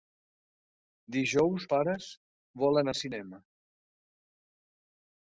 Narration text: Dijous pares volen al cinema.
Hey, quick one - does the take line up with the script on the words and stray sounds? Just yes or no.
yes